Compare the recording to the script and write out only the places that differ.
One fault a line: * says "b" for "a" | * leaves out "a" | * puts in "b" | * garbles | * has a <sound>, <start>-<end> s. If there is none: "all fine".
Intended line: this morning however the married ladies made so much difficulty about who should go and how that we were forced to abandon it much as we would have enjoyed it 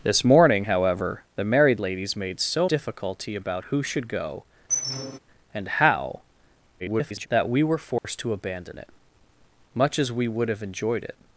* leaves out "much"
* has a squeak, 4.7-5.2 s
* garbles
* has a dropout, 8.0-8.0 s